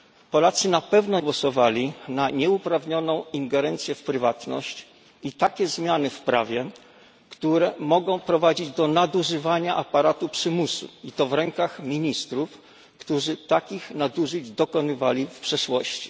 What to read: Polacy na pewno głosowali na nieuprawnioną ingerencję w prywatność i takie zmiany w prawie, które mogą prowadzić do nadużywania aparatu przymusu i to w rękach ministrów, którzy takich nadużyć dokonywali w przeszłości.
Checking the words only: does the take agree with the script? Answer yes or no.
yes